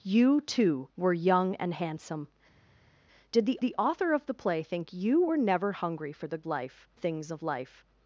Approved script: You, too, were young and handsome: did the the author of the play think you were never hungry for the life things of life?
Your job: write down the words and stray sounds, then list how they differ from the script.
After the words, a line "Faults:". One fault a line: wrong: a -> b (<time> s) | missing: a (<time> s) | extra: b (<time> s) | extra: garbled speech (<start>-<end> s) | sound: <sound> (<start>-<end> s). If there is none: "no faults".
You, too, were young and handsome: did the the author of the play think you were never hungry for the life things of life?
Faults:
no faults